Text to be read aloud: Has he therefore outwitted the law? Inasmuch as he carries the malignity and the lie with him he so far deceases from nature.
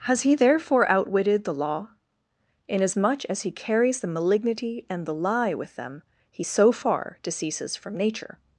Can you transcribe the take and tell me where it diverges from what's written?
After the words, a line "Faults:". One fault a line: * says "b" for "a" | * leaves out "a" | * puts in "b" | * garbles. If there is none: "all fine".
Has he therefore outwitted the law? Inasmuch as he carries the malignity and the lie with them he so far deceases from nature.
Faults:
* says "them" for "him"